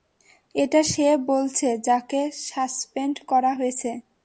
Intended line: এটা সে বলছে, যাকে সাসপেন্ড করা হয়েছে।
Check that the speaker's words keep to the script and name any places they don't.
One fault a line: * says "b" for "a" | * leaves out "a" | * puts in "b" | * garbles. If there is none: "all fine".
all fine